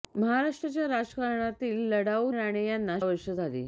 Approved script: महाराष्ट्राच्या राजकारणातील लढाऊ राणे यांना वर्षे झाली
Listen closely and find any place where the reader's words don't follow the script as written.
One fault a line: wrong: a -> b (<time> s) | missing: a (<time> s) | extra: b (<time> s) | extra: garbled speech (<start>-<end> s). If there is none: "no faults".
no faults